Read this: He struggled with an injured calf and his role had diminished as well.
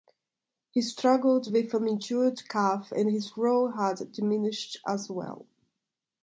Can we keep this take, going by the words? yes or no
yes